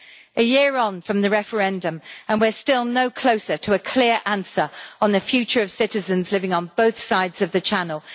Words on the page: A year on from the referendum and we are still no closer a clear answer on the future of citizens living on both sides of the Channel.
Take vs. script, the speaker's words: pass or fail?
fail